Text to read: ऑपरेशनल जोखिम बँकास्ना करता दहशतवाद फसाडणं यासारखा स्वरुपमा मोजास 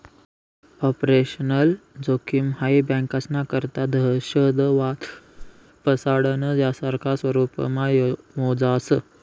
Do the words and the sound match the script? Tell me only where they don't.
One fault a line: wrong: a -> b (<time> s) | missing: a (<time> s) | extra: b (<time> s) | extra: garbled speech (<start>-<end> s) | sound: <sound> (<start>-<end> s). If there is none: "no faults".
extra: हाई (2.6 s)
sound: whoosh (5.4-5.6 s)